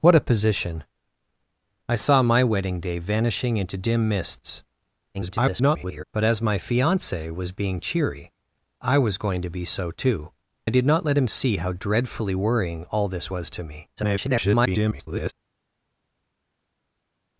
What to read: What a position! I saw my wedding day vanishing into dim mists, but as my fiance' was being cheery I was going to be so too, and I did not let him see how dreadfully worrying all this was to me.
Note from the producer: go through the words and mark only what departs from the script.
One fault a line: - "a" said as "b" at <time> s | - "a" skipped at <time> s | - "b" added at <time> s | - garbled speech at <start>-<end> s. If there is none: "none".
- garbled speech at 5.1-6.0 s
- "and" skipped at 10.3 s
- garbled speech at 14.0-15.3 s